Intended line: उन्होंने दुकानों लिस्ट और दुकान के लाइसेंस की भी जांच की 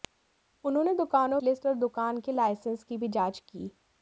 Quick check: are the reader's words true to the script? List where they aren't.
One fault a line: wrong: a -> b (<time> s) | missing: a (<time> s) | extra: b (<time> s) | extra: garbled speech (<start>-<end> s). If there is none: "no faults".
no faults